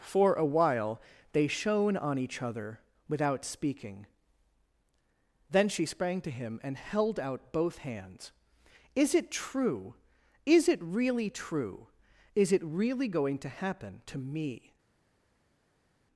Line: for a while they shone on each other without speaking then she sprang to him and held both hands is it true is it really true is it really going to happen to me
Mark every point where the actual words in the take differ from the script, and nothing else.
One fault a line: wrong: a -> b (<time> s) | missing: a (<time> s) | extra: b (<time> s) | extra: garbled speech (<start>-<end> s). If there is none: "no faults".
extra: out (7.2 s)